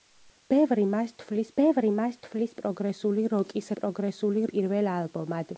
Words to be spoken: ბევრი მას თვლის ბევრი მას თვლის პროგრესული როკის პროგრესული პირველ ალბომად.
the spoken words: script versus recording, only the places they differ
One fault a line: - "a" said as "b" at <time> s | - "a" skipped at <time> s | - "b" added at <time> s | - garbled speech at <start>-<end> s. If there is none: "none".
none